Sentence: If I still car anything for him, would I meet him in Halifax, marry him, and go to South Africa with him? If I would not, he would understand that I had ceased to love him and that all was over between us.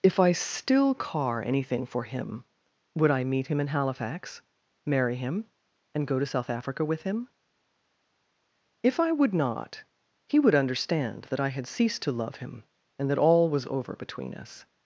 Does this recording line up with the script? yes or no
yes